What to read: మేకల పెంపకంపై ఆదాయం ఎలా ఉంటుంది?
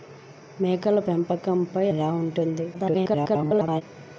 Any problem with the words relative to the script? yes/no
yes